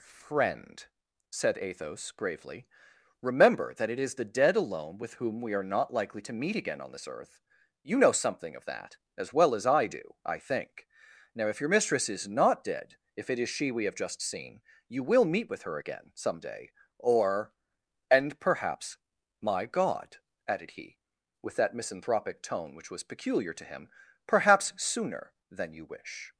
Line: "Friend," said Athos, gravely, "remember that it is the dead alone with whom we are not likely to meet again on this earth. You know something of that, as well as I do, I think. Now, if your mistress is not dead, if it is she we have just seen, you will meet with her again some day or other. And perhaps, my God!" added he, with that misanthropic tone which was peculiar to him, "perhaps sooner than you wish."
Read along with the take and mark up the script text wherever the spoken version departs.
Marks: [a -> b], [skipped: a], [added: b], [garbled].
"Friend," said Athos, gravely, "remember that it is the dead alone with whom we are not likely to meet again on this earth. You know something of that, as well as I do, I think. Now, if your mistress is not dead, if it is she we have just seen, you will meet with her again some day or [skipped: other.] And perhaps, my God!" added he, with that misanthropic tone which was peculiar to him, "perhaps sooner than you wish."